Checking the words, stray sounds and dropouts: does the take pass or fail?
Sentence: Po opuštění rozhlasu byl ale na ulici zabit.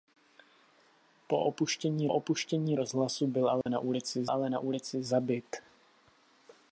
fail